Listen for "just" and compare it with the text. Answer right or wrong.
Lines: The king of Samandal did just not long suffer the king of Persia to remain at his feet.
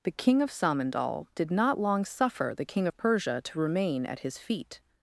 wrong